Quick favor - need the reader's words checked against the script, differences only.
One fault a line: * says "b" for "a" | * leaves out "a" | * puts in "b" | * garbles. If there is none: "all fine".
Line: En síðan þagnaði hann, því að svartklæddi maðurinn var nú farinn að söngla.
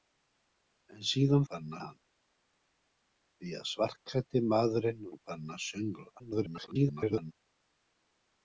* says "farinn" for "þagnaði"
* leaves out "var"
* garbles